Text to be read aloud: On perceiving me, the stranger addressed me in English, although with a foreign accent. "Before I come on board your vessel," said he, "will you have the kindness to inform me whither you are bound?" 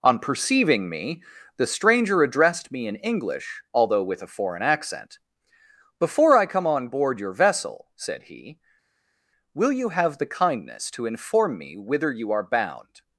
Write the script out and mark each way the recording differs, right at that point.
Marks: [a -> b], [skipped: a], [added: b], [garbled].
On perceiving me, the stranger addressed me in English, although with a foreign accent. "Before I come on board your vessel," said he, "will you have the kindness to inform me whither you are bound?"